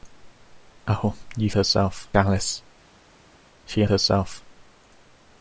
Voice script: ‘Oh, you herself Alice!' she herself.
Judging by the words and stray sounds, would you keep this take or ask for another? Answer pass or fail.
pass